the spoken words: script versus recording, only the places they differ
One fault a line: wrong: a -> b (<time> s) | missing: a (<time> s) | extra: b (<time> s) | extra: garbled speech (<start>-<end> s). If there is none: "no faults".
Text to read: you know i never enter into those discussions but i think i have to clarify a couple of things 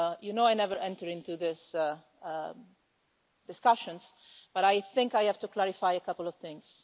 wrong: those -> these (1.4 s)